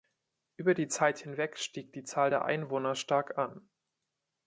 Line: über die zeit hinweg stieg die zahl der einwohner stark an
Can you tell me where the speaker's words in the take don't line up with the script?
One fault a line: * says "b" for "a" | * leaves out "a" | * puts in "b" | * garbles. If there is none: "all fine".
all fine